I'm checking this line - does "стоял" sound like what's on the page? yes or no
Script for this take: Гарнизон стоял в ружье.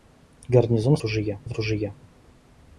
no